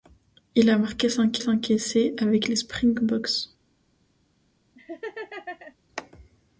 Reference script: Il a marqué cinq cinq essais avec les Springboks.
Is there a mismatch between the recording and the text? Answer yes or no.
no